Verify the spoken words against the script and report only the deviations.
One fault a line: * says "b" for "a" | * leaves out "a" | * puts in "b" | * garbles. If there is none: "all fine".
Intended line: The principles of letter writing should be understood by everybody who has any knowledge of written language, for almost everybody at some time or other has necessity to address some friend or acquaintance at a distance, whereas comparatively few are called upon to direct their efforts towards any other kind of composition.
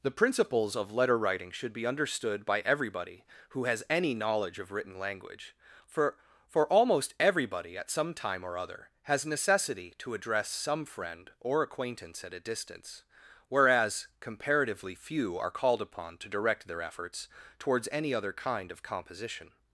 * puts in "for"